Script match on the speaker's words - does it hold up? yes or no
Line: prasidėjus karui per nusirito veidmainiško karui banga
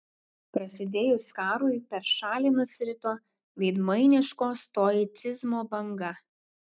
no